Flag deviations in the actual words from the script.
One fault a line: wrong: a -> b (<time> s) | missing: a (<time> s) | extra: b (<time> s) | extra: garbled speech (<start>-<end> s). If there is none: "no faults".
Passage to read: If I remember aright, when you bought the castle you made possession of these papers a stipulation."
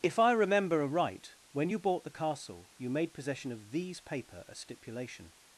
wrong: papers -> paper (4.0 s)